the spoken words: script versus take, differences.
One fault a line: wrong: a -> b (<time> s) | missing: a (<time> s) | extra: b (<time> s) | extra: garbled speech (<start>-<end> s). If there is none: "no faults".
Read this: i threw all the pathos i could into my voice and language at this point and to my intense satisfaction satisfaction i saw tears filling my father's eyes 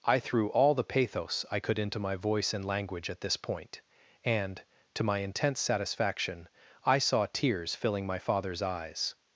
missing: satisfaction (6.5 s)